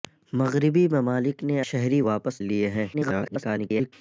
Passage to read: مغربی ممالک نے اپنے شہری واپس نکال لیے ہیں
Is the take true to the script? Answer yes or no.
no